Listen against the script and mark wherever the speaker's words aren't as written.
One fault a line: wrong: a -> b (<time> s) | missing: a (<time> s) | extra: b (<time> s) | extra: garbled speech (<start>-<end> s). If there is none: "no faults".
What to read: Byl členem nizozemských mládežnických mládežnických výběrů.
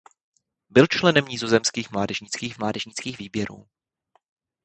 no faults